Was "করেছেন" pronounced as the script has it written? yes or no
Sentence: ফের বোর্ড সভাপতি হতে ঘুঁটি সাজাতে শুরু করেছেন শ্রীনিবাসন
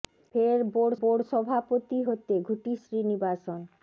no